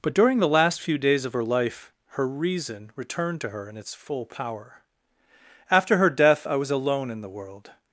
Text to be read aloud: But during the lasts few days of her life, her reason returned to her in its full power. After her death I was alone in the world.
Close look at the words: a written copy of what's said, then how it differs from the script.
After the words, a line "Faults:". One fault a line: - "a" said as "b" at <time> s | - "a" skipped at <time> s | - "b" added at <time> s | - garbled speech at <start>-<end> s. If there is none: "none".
But during the last few days of her life, her reason returned to her in its full power. After her death I was alone in the world.
Faults:
- "lasts" said as "last" at 0.5 s